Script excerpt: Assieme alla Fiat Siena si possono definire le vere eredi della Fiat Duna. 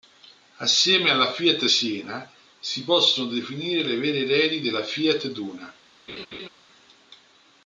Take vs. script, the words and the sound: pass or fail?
fail